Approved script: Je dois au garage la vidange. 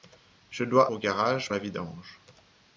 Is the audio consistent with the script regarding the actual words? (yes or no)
yes